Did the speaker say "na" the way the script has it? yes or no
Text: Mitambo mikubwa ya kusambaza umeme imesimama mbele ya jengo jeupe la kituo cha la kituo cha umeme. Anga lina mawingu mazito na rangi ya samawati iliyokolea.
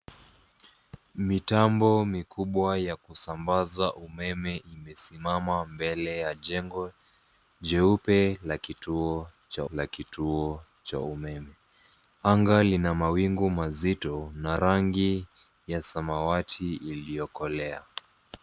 yes